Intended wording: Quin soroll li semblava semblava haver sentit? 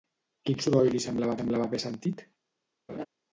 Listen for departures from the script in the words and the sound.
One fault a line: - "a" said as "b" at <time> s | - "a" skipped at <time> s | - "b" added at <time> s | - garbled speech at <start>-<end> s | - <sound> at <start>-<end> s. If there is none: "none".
- laugh at 2.9-3.1 s